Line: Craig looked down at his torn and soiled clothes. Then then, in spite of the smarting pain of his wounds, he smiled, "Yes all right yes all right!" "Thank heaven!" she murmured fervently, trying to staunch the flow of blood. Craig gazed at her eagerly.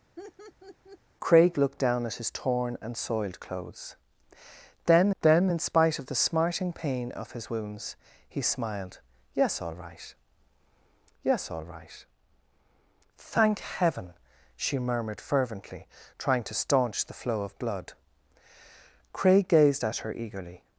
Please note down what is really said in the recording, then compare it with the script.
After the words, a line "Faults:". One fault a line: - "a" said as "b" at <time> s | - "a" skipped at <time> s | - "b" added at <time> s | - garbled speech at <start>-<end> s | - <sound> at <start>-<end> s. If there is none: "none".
Craig looked down at his torn and soiled clothes. Then then, in spite of the smarting pain of his wounds, he smiled, "Yes all right yes all right!" "Thank heaven!" she murmured fervently, trying to staunch the flow of blood. Craig gazed at her eagerly.
Faults:
- laugh at 0.2-1.0 s